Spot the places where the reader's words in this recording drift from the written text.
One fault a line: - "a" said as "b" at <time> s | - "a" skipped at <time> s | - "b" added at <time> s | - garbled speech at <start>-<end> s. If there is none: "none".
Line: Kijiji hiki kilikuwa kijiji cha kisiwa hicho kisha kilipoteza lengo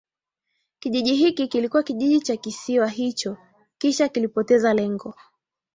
none